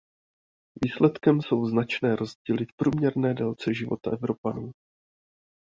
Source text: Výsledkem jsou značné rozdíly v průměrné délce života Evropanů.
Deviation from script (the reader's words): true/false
false